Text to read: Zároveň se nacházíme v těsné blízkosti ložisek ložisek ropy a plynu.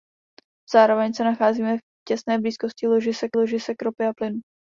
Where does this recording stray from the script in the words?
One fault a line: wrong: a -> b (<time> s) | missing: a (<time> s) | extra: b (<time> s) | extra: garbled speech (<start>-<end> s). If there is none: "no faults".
no faults